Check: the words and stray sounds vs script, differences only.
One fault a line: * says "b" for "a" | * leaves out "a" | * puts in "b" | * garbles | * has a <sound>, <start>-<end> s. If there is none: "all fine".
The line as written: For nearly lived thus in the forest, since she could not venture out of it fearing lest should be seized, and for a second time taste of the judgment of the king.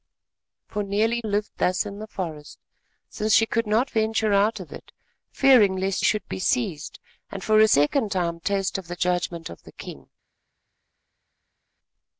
all fine